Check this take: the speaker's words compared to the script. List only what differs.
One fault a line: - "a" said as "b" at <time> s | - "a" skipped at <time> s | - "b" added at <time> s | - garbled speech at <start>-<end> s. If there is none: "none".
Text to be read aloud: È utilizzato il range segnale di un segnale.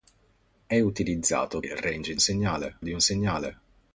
none